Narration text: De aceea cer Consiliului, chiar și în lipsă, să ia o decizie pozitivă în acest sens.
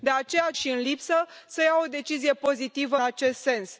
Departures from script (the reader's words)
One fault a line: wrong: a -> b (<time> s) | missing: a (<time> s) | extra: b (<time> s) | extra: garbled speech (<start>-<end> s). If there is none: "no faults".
missing: cer Consiliului chiar (0.5 s)
missing: în (3.0 s)